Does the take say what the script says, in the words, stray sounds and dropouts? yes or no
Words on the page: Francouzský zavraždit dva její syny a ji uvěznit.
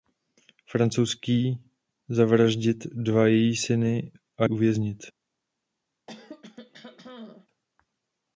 no